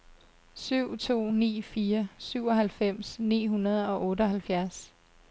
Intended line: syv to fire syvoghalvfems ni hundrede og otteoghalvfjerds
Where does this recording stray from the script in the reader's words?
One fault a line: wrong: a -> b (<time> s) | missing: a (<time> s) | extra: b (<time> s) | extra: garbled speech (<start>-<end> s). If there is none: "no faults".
extra: ni (1.3 s)